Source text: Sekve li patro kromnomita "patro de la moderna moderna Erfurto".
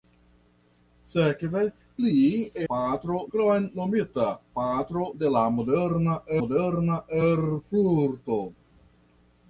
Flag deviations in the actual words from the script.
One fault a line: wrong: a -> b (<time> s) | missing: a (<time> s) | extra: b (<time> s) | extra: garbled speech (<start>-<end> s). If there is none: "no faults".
no faults